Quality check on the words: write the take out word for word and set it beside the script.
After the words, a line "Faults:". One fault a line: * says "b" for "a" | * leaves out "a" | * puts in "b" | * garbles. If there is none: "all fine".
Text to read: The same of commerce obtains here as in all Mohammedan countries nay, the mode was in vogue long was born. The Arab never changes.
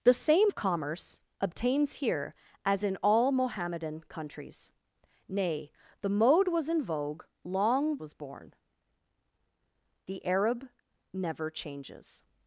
The same of commerce obtains here as in all Mohammedan countries nay, the mode was in vogue long was born. The Arab never changes.
Faults:
all fine